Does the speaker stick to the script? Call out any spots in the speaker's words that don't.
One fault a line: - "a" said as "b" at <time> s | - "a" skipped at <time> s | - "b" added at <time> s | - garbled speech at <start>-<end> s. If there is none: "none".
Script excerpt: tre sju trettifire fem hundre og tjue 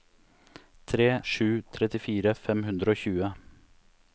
none